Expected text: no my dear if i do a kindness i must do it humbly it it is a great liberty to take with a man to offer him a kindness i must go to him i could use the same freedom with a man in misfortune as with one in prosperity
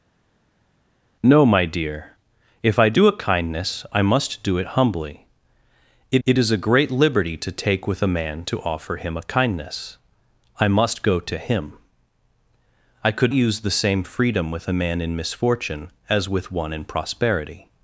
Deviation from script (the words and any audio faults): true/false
false